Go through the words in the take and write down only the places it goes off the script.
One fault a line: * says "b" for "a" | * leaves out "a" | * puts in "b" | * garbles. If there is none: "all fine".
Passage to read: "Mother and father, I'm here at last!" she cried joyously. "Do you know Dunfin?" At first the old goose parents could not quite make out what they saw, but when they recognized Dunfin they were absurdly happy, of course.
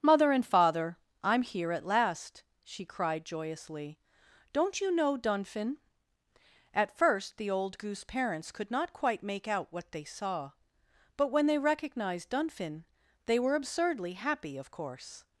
* says "Don't" for "Do"